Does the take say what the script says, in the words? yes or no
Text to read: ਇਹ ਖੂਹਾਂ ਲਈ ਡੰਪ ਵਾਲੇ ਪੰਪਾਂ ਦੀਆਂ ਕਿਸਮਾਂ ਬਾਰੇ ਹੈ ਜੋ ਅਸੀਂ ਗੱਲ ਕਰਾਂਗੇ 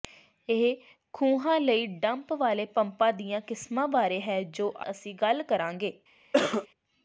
yes